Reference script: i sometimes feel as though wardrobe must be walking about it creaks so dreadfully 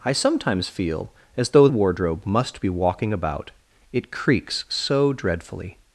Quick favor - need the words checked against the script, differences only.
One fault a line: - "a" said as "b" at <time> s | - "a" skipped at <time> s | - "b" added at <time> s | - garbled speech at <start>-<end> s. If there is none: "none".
none